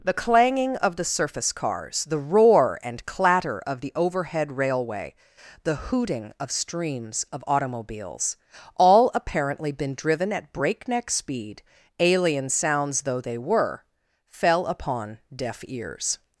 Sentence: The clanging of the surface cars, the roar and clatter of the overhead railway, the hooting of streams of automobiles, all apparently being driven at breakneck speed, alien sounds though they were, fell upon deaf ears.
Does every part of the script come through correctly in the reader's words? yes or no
no